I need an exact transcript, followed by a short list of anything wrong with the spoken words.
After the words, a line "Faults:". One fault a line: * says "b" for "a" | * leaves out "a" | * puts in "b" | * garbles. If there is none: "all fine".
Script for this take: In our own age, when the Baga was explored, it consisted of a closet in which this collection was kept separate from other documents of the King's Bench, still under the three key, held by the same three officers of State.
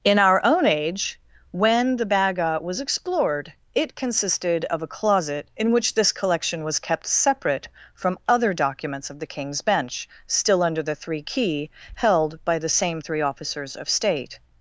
In our own age, when the Baga was explored, it consisted of a closet in which this collection was kept separate from other documents of the King's Bench, still under the three key, held by the same three officers of State.
Faults:
all fine